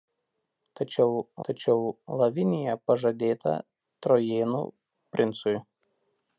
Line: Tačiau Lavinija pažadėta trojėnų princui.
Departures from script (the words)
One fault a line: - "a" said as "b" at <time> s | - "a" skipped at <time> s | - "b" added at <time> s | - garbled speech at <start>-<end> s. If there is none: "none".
- "tačiau" added at 1.5 s